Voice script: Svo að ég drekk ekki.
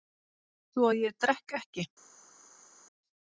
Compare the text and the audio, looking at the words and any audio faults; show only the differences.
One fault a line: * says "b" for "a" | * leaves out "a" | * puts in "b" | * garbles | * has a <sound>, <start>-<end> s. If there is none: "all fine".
all fine